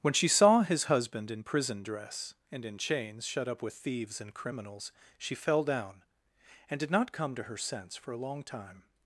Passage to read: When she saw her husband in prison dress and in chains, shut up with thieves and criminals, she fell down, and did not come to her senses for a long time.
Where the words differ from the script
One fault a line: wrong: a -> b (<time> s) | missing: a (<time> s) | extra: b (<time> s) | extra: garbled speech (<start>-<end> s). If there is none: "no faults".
wrong: her -> his (0.6 s)
wrong: senses -> sense (7.6 s)